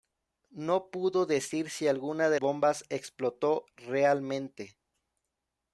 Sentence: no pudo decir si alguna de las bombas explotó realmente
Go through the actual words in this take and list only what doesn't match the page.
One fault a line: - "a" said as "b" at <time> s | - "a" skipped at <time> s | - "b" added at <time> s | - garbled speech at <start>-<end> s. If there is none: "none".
- "las" skipped at 2.4 s